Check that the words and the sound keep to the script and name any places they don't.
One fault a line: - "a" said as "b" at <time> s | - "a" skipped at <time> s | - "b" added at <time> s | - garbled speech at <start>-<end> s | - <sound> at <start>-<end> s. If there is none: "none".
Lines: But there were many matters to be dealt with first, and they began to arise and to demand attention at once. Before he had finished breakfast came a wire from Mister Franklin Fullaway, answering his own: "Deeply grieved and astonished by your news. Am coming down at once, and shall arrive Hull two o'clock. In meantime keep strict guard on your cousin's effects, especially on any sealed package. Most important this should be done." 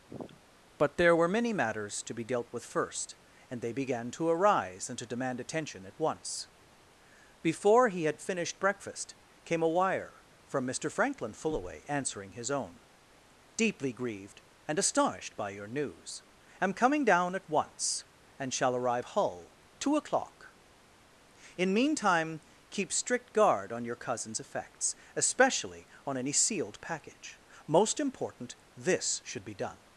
- sniff at 0.1-0.4 s